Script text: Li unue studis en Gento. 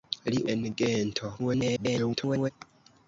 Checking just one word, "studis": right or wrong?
wrong